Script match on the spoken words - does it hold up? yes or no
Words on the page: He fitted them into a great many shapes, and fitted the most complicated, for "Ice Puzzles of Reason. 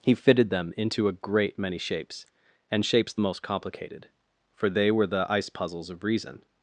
no